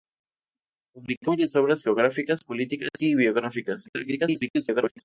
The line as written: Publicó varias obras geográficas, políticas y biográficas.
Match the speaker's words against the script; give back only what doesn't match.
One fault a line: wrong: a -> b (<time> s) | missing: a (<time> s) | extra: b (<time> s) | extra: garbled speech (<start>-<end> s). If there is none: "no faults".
extra: garbled speech (3.8-5.0 s)